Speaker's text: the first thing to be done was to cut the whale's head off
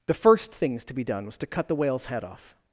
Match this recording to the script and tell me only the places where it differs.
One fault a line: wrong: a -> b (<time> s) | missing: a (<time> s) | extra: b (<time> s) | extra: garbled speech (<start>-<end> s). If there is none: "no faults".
wrong: thing -> things (0.5 s)